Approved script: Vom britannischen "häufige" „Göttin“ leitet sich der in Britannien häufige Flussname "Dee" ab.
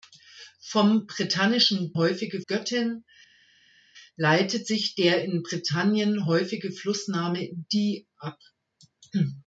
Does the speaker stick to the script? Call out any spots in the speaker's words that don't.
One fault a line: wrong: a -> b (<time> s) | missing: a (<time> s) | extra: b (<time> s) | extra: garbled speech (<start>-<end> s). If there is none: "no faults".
no faults